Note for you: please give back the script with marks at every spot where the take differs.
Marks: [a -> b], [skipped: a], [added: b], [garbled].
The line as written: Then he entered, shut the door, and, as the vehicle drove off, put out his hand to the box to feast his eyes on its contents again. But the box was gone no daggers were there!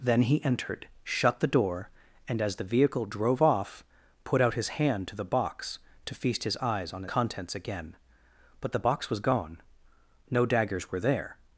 Then he entered, shut the door, and, as the vehicle drove off, put out his hand to the box to feast his eyes on [skipped: its] contents again. But the box was gone no daggers were there!